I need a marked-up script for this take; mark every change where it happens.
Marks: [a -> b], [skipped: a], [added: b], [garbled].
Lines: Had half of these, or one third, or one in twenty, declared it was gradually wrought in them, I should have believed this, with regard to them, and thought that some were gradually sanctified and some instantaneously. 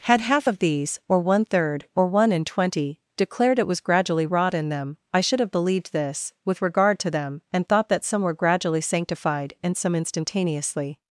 Had half of these, or one third, or one in twenty, declared it was gradually wrought in them, I should have believed this, with regard to them, and thought that some were gradually sanctified and some instantaneously.